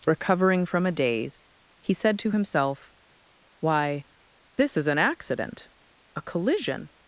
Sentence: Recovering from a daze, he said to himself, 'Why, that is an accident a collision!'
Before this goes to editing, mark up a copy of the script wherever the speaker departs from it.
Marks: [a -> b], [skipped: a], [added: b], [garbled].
Recovering from a daze, he said to himself, 'Why, [that -> this] is an accident a collision!'